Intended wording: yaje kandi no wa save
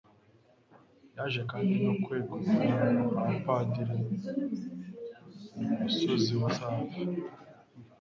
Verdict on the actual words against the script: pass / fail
fail